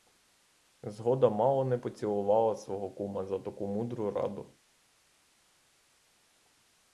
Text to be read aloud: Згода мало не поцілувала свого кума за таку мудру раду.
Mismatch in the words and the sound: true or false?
false